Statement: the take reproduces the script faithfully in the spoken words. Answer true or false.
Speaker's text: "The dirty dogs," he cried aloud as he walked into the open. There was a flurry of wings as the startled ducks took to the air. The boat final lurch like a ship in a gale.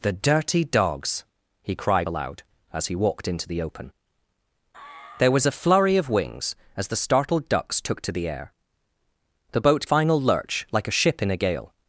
true